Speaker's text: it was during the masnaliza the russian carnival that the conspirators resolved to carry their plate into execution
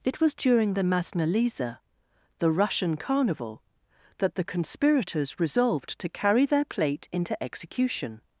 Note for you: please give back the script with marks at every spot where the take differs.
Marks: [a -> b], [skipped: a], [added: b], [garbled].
it was during the masnaliza the russian carnival that the conspirators resolved to carry their plate into execution